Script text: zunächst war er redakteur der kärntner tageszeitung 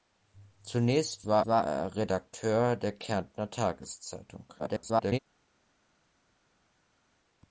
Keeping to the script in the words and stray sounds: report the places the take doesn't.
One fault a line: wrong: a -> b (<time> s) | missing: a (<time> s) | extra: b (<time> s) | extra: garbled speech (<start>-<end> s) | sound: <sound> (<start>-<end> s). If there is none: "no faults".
extra: war (1.5 s)
extra: garbled speech (4.6-5.2 s)